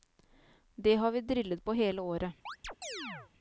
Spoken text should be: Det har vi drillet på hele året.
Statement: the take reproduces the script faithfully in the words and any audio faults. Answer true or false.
false